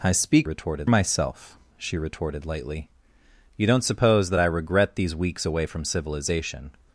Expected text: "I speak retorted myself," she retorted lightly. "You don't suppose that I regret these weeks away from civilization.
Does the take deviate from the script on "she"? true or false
false